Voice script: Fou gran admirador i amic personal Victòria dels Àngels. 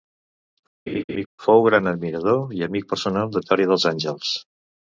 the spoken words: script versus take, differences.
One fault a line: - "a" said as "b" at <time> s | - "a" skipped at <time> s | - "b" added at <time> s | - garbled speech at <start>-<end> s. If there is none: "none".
none